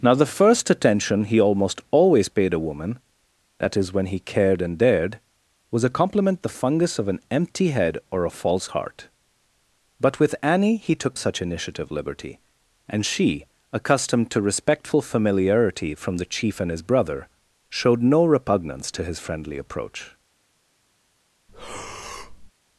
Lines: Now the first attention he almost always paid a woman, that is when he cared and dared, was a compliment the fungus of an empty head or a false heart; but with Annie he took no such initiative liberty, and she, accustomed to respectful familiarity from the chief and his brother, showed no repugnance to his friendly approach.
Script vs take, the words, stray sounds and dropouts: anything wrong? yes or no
yes